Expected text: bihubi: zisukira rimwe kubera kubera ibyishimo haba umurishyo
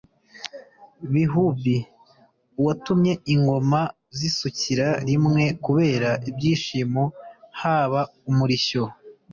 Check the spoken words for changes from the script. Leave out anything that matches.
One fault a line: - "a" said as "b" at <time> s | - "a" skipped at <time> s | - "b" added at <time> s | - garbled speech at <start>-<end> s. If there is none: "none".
- "uwatumye ingoma" added at 2.6 s
- "kubera" skipped at 6.1 s